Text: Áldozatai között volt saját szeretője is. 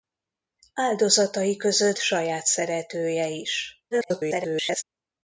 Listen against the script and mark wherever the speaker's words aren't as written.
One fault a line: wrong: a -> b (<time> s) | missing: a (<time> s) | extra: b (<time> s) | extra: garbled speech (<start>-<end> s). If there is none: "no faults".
missing: volt (2.0 s)
extra: garbled speech (3.9-4.8 s)